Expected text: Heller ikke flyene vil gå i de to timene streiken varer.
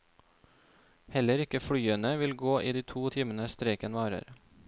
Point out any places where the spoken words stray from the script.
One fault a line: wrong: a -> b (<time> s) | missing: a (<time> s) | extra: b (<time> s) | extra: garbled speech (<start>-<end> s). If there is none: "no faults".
no faults